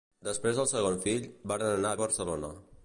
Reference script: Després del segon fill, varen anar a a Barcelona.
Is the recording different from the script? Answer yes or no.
no